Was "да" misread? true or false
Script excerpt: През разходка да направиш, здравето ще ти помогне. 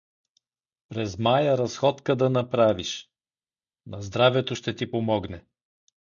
false